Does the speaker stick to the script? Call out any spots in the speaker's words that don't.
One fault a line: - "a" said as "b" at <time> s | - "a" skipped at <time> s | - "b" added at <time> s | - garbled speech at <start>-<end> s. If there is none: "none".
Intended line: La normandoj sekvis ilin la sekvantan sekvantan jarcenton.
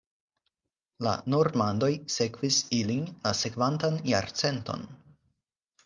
- "sekvantan" skipped at 4.0 s